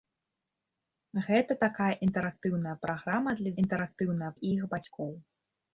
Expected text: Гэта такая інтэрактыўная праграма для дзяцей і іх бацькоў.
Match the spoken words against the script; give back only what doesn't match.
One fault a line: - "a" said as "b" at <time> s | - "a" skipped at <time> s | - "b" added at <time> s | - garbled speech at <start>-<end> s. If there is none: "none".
- "дзяцей" said as "інтэрактыўная" at 3.6 s